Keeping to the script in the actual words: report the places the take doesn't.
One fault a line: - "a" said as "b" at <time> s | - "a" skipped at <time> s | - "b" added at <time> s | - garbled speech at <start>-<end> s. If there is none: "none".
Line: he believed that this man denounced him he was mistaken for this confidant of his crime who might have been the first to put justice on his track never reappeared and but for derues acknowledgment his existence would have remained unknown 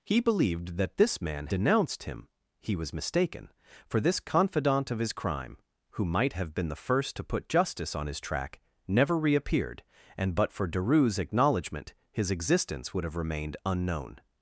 none